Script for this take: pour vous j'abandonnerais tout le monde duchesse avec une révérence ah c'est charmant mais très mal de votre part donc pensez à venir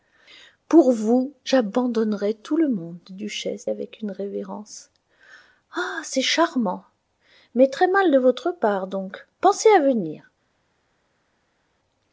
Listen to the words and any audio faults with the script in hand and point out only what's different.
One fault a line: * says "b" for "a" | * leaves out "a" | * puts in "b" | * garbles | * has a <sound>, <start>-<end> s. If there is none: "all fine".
all fine